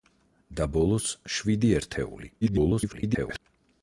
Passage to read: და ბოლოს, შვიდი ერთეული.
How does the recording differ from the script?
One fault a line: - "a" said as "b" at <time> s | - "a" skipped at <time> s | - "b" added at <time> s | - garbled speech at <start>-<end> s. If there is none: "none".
- garbled speech at 2.4-3.4 s